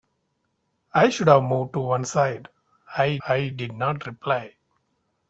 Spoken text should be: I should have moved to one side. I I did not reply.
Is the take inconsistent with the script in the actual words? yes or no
no